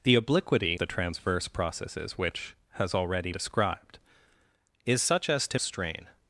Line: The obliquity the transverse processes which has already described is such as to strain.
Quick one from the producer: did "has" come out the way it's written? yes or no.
yes